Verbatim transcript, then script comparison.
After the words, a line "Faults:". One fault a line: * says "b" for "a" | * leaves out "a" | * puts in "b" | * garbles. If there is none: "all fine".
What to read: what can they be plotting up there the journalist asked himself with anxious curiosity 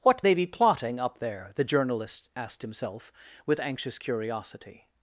what they be plotting up there the journalist asked himself with anxious curiosity
Faults:
* leaves out "can"